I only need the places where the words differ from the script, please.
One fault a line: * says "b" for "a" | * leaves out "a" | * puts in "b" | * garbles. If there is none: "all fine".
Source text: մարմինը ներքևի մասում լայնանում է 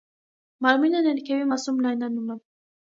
all fine